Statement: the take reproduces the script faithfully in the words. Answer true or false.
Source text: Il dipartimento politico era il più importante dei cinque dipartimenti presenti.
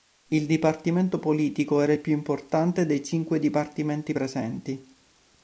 true